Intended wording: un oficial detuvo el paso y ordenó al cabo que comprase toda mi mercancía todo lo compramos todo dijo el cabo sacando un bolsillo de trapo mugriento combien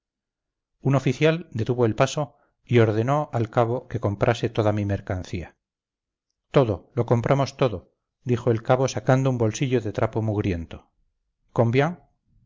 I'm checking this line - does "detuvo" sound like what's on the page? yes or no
yes